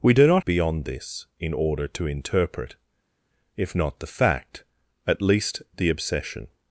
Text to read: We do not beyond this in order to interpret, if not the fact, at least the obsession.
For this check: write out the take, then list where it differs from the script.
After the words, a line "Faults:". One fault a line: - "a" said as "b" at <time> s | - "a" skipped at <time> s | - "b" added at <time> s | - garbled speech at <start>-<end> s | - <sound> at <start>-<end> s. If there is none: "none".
We do not beyond this in order to interpret, if not the fact, at least the obsession.
Faults:
none